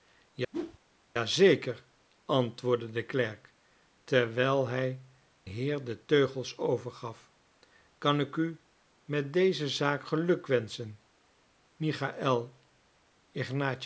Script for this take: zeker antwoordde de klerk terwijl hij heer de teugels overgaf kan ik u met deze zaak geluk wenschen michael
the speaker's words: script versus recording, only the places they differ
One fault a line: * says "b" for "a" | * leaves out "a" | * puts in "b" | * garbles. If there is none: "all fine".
all fine